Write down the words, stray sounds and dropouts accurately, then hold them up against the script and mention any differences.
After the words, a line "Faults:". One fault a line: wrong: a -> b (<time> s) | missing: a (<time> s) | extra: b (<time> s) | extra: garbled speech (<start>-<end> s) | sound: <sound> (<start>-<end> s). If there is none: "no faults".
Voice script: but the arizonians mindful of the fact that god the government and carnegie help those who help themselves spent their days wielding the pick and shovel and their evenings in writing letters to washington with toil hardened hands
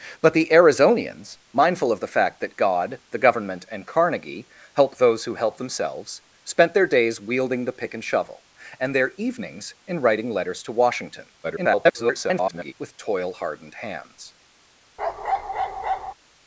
but the arizonians mindful of the fact that god the government and carnegie help those who help themselves spent their days wielding the pick and shovel and their evenings in writing letters to washington [garbled] with toil hardened hands
Faults:
extra: garbled speech (11.4-12.7 s)
sound: bark (15.0-16.1 s)